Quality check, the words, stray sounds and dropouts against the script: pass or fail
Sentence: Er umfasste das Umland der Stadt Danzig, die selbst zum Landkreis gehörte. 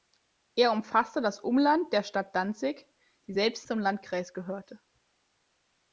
pass